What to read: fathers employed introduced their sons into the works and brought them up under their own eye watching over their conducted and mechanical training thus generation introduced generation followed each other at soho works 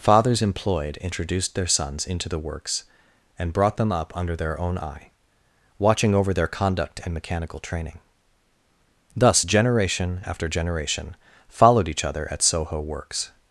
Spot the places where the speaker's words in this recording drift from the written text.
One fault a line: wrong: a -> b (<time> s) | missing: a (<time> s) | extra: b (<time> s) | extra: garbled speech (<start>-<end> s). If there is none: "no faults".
wrong: conducted -> conduct (6.5 s)
wrong: introduced -> after (10.3 s)